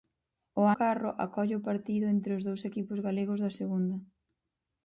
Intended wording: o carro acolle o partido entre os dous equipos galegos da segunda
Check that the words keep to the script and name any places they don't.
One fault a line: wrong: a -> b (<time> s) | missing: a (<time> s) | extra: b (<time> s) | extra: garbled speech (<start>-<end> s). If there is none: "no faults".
no faults